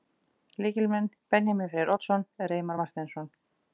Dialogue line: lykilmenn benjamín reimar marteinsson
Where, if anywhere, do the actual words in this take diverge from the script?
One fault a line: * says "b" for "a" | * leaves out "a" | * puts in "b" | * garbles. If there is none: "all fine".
* puts in "freyr oddsson"